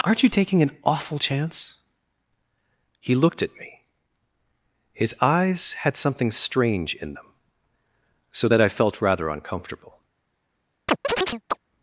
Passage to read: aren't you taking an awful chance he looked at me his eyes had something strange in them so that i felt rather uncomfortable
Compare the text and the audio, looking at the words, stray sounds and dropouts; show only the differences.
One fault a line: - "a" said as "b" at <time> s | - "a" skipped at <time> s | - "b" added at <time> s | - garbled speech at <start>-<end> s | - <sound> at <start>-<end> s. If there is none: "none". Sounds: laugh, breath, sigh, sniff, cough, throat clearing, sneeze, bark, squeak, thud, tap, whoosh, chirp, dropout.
- chirp at 10.9-11.6 s